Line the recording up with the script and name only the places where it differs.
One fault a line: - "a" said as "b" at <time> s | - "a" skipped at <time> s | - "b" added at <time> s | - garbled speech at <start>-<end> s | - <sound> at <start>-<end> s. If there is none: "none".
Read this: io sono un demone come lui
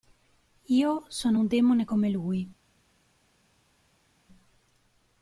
none